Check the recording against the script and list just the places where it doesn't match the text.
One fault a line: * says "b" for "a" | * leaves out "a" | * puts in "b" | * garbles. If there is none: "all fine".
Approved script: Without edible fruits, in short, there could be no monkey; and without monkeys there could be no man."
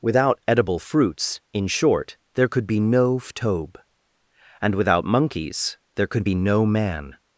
* says "ftobe" for "monkey"